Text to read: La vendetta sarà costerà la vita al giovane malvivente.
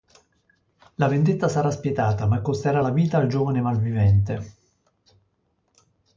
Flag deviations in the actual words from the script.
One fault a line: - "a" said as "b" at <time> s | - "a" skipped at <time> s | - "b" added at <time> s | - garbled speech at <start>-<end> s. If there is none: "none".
- "spietata ma" added at 1.7 s